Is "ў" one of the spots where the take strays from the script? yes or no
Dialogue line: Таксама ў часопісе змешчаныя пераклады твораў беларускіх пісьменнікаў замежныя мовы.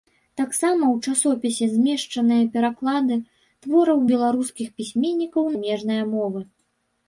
no